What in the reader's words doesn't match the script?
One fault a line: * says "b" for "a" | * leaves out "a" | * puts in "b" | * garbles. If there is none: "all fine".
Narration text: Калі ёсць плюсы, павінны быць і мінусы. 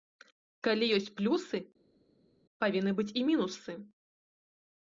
all fine